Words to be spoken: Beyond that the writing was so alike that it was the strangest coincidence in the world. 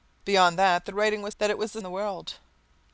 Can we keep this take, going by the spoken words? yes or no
no